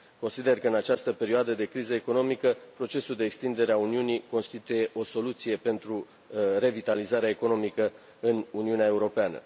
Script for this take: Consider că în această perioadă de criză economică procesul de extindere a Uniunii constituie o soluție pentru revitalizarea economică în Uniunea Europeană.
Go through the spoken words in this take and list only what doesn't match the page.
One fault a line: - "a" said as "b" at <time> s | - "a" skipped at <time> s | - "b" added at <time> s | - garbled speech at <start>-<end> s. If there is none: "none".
none